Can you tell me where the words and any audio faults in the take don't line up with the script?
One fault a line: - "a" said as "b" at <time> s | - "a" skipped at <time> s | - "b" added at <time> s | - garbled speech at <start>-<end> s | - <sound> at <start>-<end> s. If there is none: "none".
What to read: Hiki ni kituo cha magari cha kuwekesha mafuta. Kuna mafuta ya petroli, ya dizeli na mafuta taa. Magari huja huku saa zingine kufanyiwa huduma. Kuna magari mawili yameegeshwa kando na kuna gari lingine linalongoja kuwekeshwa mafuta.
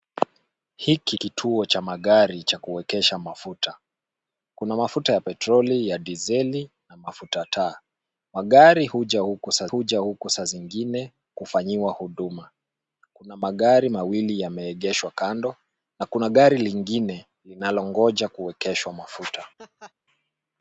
- "ni" skipped at 1.2 s
- "huja huku saa" added at 9.7 s
- laugh at 19.6-19.9 s